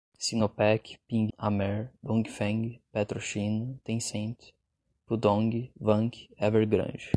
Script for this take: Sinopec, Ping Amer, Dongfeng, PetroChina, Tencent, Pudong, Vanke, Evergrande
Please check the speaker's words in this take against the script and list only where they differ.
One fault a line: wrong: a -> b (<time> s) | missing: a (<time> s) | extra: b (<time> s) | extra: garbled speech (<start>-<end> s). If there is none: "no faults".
no faults